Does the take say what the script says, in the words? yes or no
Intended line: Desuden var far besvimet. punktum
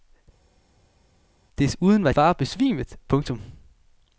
yes